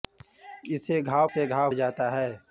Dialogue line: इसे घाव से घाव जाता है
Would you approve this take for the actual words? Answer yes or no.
yes